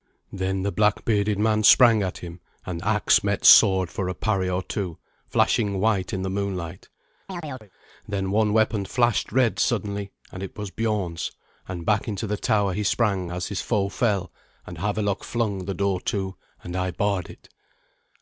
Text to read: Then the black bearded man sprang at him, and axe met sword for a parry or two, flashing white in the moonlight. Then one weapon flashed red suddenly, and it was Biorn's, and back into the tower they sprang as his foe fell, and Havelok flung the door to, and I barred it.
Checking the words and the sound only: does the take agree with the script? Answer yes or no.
no